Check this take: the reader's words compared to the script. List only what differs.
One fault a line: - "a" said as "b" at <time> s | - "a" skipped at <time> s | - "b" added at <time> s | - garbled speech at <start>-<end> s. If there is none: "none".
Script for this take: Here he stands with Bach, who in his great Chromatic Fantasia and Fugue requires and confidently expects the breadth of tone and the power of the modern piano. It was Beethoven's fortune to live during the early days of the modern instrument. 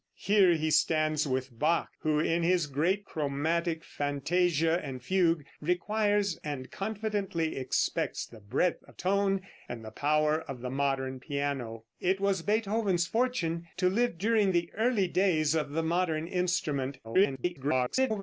- garbled speech at 17.0-18.2 s